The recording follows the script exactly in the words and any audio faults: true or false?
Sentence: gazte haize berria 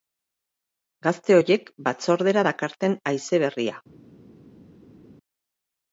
false